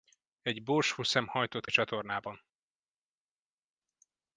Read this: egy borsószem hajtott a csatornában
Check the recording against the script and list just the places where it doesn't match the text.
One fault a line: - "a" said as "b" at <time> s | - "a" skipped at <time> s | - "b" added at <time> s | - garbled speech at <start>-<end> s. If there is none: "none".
none